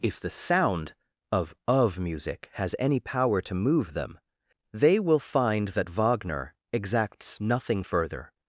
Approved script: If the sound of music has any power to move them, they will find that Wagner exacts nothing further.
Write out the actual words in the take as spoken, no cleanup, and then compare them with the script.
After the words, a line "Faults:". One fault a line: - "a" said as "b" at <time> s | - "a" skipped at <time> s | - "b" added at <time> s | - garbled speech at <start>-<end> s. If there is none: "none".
If the sound of of music has any power to move them, they will find that Wagner exacts nothing further.
Faults:
- "of" added at 1.7 s